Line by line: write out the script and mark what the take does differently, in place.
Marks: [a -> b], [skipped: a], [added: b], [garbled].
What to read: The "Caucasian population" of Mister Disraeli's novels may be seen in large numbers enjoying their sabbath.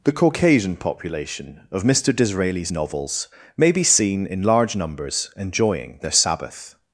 The "Caucasian population" of Mister Disraeli's novels may be seen in large numbers enjoying their sabbath.